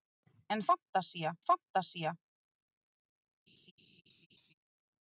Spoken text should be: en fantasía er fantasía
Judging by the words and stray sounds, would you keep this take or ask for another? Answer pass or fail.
fail